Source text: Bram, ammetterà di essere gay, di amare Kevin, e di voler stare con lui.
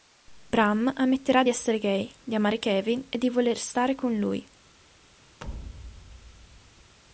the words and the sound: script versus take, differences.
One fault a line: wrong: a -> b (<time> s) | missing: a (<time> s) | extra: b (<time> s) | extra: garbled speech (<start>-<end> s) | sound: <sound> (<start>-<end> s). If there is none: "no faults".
sound: thud (5.4-7.0 s)